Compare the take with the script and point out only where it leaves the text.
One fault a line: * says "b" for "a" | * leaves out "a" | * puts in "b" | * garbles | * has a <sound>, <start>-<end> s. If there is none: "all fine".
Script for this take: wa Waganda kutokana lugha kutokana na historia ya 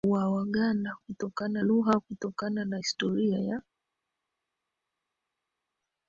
all fine